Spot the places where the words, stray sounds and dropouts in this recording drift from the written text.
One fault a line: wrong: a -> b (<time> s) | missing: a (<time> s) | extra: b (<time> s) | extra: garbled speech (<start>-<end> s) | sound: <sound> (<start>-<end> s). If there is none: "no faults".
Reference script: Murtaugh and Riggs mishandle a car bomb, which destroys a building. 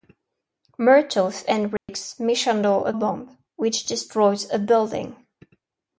sound: dropout (1.8-1.9 s)
missing: car (2.9 s)